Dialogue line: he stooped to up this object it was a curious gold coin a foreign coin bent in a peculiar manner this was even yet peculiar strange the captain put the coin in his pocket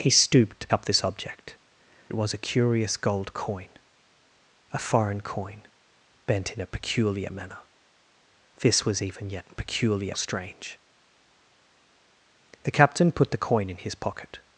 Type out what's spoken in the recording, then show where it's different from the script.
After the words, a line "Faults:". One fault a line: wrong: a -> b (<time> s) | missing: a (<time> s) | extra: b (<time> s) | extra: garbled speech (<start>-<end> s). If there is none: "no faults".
he stooped to up this object it was a curious gold coin a foreign coin bent in a peculiar manner this was even yet peculiar strange the captain put the coin in his pocket
Faults:
no faults